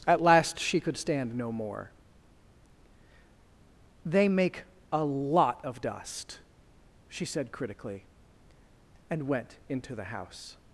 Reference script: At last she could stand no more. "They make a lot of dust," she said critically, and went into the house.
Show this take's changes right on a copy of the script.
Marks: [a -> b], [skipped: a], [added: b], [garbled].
At last she could stand no more. "They make a lot of dust," she said critically, and went into the house.